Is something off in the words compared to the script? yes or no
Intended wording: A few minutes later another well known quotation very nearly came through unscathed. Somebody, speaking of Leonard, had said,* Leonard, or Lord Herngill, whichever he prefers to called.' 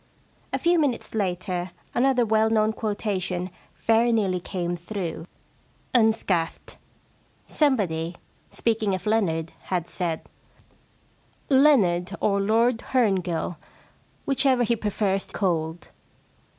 no